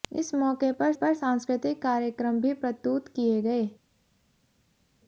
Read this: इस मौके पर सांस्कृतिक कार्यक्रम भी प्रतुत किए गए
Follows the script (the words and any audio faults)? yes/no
no